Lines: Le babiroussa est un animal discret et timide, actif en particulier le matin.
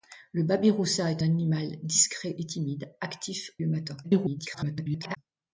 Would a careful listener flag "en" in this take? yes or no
yes